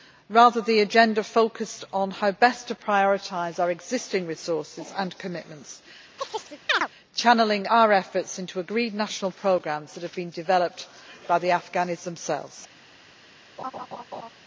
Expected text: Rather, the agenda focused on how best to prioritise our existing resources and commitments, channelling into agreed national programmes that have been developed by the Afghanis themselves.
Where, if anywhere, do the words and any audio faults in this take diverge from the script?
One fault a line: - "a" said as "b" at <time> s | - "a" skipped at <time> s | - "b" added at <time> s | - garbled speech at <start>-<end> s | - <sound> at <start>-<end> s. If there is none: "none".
- chirp at 6.2-6.9 s
- "our efforts" added at 7.7 s
- laugh at 13.6-14.3 s